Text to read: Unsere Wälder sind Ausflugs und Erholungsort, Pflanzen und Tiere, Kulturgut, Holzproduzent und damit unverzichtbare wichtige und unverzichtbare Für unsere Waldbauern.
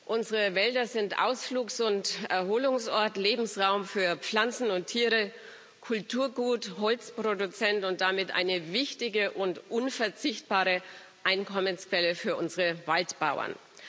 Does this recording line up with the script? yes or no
no